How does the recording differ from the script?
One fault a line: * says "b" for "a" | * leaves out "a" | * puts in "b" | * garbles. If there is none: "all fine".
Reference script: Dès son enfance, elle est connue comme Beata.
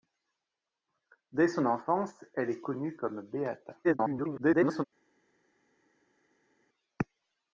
* garbles